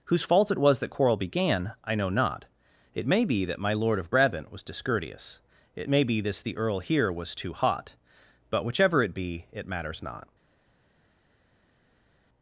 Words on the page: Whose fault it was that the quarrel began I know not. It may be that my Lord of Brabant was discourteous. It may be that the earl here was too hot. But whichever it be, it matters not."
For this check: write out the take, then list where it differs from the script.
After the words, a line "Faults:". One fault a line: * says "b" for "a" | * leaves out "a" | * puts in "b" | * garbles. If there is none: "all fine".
Whose fault it was that quarrel began I know not. It may be that my Lord of Brabant was discourteous. It may be this the earl here was too hot. But whichever it be, it matters not."
Faults:
* leaves out "the"
* says "this" for "that"